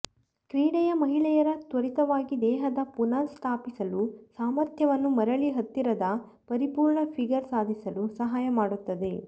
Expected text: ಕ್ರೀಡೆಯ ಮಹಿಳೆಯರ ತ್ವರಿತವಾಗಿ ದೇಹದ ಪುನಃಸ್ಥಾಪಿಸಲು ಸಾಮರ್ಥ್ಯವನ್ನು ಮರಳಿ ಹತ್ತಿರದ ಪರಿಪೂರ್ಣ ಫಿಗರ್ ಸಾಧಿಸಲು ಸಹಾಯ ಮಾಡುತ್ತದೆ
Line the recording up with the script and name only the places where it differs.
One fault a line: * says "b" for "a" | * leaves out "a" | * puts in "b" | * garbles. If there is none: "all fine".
all fine